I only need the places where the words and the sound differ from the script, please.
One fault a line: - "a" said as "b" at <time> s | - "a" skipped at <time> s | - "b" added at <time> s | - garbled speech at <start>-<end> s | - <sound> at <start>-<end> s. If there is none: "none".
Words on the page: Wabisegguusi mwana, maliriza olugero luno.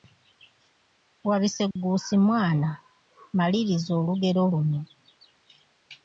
- dropout at 1.7-1.8 s